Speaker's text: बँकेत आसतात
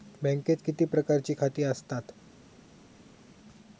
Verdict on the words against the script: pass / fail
fail